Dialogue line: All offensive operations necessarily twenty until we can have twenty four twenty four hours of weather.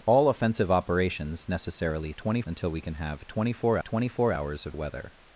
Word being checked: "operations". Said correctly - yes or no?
yes